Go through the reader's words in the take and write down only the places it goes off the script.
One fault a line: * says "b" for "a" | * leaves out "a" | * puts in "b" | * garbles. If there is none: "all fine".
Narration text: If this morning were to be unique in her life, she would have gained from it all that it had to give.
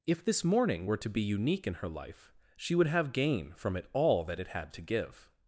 * says "gain" for "gained"